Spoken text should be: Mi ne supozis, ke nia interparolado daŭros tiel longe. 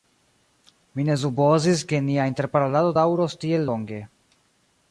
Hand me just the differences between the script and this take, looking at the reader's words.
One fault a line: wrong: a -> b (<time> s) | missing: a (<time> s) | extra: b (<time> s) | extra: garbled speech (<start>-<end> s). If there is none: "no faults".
no faults